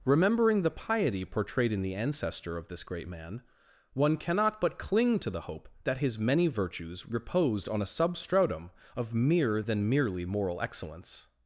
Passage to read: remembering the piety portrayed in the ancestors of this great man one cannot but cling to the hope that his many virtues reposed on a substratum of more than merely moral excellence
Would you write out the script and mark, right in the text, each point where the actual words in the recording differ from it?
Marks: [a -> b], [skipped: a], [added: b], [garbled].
remembering the piety portrayed in the [ancestors -> ancestor] of this great man one cannot but cling to the hope that his many virtues reposed on a substratum of [more -> mere] than merely moral excellence